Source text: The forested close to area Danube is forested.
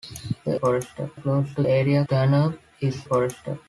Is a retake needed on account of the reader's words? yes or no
no